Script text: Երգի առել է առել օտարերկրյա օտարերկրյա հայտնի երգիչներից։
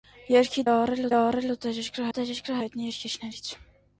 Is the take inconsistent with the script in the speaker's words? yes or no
no